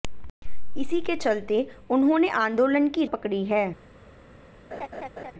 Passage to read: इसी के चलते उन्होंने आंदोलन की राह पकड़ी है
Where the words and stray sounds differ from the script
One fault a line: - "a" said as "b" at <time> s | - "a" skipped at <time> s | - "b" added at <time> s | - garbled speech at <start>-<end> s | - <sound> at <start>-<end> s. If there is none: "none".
- "राह" skipped at 3.0 s
- laugh at 4.7-5.3 s